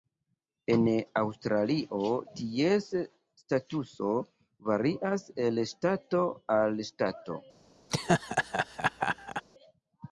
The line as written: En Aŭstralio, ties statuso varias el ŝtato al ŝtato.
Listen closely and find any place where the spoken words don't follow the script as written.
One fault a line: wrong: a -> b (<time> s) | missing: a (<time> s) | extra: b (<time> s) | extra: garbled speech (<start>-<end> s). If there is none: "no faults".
no faults